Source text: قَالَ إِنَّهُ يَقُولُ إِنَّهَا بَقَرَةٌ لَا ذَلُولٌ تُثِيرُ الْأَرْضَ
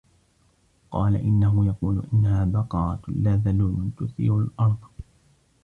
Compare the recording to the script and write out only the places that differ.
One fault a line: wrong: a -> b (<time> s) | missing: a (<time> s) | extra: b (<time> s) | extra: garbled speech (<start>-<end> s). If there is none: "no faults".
no faults